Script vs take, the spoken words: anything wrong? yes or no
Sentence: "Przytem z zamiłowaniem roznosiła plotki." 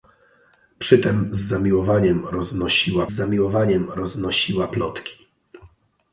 yes